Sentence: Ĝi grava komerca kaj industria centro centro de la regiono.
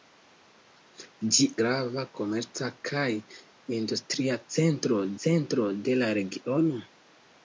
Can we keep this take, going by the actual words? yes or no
yes